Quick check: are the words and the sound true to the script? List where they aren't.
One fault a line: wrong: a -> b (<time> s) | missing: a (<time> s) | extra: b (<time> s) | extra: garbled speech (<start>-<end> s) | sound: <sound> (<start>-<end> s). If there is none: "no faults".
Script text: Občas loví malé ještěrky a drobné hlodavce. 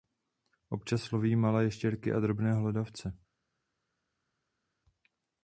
no faults